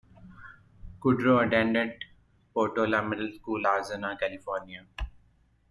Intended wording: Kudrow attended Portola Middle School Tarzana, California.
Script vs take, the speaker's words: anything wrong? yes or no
no